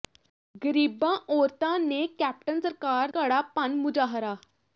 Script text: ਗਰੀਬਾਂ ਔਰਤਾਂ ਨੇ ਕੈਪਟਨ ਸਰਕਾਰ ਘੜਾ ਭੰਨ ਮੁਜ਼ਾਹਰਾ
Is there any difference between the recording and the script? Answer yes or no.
no